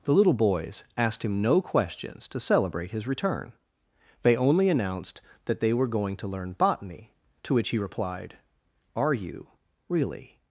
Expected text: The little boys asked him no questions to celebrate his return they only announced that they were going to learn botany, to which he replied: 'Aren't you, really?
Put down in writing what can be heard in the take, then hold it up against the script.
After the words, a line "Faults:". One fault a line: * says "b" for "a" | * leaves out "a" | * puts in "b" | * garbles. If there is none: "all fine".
The little boys asked him no questions to celebrate his return they only announced that they were going to learn botany, to which he replied: 'Are you, really?
Faults:
* says "Are" for "Aren't"